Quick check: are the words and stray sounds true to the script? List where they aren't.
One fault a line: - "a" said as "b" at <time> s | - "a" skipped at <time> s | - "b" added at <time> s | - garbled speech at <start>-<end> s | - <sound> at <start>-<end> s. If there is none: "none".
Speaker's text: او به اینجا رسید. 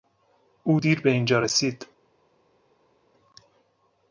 - "دیر" added at 0.8 s